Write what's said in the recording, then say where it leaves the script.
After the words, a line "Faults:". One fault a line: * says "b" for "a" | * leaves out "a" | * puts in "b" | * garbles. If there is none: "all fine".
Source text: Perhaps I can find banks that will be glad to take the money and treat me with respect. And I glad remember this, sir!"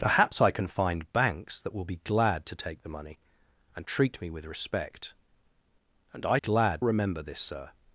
Perhaps I can find banks that will be glad to take the money and treat me with respect. And I glad remember this, sir!"
Faults:
all fine